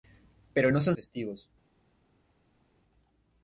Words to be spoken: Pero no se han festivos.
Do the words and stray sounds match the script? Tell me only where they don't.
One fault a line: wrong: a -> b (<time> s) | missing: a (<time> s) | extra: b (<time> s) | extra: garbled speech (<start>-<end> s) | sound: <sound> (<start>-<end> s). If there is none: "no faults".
no faults